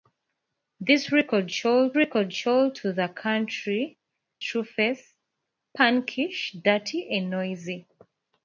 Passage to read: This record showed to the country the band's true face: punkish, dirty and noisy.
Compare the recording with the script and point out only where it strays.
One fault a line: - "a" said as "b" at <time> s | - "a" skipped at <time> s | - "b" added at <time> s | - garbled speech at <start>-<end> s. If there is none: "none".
- "record showed" added at 1.9 s
- "the band's" skipped at 4.0 s